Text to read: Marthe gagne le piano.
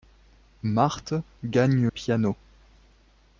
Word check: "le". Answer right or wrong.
wrong